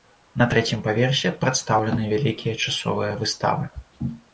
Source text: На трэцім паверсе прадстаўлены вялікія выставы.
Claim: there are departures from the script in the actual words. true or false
true